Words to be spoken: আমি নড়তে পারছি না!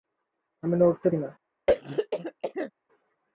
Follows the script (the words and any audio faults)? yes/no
no